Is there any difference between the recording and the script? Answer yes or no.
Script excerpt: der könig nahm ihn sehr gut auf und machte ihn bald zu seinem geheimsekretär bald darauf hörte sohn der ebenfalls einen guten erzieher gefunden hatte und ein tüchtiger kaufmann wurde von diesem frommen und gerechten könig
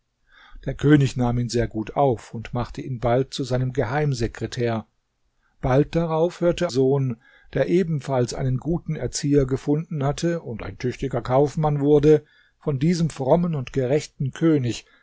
no